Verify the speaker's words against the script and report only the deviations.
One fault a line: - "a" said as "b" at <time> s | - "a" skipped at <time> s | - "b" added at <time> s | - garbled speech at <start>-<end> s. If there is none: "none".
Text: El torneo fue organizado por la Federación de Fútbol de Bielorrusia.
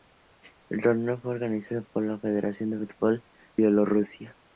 - "de" skipped at 3.2 s